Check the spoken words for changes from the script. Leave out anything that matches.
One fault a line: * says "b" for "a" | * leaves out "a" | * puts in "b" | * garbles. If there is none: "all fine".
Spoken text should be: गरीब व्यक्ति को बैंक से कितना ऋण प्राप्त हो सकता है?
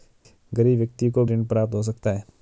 * leaves out "बैंक से कितना"